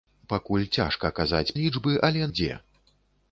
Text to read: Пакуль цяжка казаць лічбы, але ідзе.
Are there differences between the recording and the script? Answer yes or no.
no